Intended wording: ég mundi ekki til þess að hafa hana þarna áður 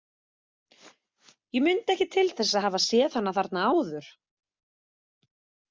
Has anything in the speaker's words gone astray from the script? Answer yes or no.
yes